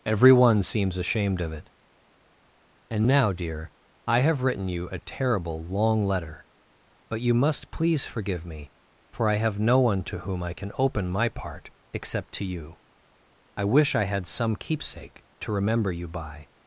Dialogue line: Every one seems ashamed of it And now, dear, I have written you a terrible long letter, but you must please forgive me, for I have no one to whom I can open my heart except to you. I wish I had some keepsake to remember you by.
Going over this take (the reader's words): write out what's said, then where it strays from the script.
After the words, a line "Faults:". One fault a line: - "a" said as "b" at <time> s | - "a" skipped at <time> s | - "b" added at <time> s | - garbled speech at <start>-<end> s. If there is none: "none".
Every one seems ashamed of it And now, dear, I have written you a terrible long letter, but you must please forgive me, for I have no one to whom I can open my part except to you. I wish I had some keepsake to remember you by.
Faults:
- "heart" said as "part" at 11.3 s